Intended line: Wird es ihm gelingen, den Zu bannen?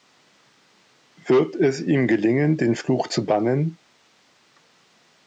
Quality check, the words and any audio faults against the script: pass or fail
fail